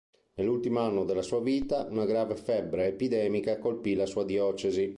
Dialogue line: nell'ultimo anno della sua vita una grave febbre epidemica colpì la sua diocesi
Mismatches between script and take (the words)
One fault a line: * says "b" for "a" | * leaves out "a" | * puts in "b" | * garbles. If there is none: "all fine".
all fine